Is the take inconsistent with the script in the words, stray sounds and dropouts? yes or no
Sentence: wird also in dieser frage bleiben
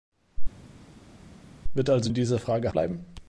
no